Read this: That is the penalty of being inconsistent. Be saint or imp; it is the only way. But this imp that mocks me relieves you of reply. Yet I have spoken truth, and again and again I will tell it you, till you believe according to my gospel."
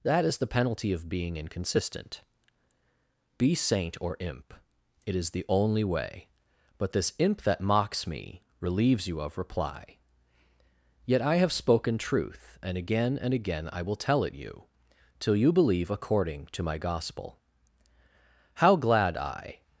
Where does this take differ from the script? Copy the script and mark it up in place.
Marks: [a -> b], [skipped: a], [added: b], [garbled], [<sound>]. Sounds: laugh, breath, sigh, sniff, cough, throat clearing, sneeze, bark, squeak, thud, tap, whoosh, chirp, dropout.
That is the penalty of being inconsistent. Be saint or imp; it is the only way. But this imp that mocks me relieves you of reply. Yet I have spoken truth, and again and again I will tell it you, till you believe according to my gospel." [added: How glad I]